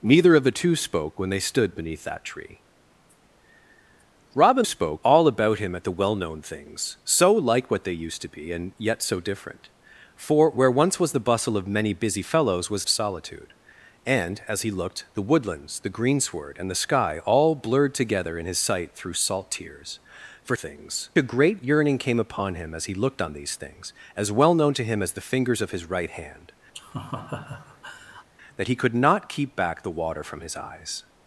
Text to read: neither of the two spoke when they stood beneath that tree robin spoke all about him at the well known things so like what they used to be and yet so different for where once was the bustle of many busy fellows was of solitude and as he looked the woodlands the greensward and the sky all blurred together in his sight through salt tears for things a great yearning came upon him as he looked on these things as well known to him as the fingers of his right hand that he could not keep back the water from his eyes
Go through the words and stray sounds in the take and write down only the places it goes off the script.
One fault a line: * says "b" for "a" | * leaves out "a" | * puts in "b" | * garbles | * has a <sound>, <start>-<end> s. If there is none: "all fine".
* has a laugh, 26.7-28.3 s